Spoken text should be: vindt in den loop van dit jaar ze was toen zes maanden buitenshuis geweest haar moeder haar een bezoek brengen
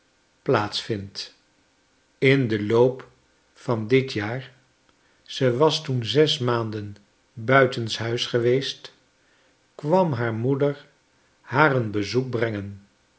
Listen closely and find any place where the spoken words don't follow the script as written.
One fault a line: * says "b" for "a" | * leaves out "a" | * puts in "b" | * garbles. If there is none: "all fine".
* puts in "kwam"